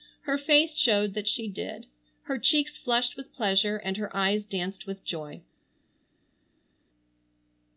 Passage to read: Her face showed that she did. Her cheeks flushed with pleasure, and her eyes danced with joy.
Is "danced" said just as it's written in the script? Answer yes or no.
yes